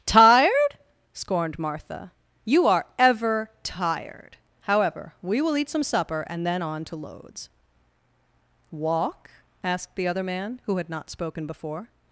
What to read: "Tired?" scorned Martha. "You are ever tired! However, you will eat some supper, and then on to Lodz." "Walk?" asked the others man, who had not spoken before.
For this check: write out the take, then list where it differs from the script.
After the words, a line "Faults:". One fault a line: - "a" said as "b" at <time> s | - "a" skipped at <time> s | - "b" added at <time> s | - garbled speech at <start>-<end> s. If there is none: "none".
"Tired?" scorned Martha. "You are ever tired! However, we will eat some supper, and then on to Lodz." "Walk?" asked the other man, who had not spoken before.
Faults:
- "you" said as "we" at 5.2 s
- "others" said as "other" at 10.1 s